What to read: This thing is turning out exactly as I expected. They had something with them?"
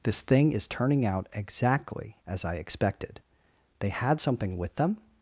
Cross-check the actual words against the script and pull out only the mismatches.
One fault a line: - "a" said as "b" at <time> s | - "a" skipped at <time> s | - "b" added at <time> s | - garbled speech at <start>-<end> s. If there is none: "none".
none